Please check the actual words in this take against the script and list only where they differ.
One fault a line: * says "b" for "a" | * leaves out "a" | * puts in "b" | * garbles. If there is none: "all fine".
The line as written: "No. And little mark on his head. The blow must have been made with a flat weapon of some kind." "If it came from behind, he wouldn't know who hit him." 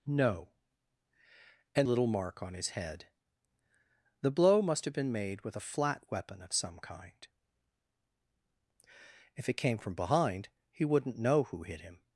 all fine